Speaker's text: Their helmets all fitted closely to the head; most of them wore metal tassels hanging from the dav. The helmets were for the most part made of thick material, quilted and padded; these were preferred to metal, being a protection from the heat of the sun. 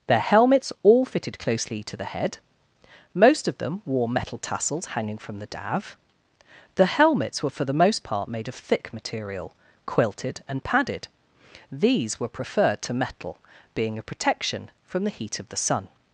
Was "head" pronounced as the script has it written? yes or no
yes